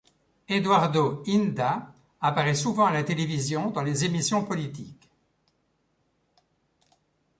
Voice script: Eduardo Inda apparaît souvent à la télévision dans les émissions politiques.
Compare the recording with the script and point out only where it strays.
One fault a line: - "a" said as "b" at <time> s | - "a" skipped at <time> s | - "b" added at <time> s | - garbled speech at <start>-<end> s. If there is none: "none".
none